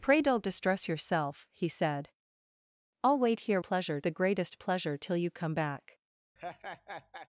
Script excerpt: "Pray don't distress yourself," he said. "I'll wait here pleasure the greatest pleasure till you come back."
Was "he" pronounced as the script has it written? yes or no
yes